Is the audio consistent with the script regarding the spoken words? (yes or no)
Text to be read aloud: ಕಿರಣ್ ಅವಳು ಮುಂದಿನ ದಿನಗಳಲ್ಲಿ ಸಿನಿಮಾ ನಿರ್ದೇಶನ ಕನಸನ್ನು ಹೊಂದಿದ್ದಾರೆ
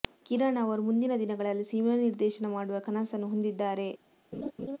no